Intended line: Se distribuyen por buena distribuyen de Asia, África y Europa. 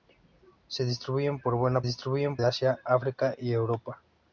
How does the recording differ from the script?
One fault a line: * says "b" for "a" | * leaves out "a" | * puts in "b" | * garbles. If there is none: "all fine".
all fine